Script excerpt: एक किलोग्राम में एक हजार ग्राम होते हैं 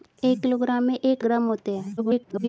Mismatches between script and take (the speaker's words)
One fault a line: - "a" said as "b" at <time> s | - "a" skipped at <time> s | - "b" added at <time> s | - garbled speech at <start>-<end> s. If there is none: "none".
- "हजार" skipped at 1.2 s
- garbled speech at 2.0-2.5 s